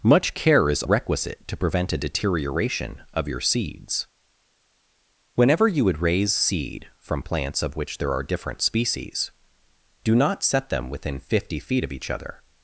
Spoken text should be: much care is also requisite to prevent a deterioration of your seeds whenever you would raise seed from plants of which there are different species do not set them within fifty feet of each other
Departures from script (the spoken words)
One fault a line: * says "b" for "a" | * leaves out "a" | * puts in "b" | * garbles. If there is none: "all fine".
* leaves out "also"